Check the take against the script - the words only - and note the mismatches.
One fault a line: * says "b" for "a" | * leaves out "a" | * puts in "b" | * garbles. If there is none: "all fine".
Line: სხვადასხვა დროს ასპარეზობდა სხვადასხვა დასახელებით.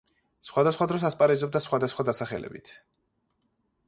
all fine